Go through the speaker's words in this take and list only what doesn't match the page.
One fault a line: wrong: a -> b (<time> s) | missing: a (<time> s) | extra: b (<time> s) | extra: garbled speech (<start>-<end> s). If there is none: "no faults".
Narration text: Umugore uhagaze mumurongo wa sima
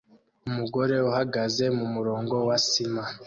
no faults